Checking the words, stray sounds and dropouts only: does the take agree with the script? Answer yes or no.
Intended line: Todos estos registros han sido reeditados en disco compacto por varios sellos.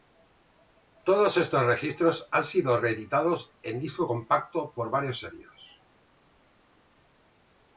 yes